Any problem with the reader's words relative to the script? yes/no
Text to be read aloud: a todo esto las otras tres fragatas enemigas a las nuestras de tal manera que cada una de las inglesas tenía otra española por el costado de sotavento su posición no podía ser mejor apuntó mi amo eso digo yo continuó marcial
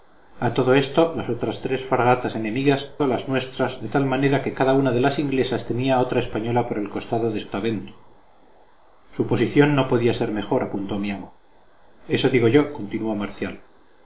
no